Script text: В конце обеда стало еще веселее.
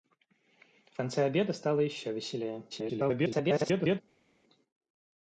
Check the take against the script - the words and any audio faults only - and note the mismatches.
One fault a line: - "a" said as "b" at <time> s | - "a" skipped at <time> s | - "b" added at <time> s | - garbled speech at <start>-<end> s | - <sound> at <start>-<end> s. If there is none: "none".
- garbled speech at 2.7-4.0 s